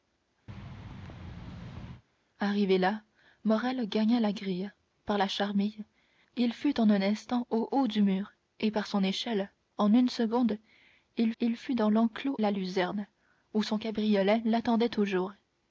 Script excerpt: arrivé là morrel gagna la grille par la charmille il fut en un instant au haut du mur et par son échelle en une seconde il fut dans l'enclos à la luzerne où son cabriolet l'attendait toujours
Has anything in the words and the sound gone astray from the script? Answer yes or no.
yes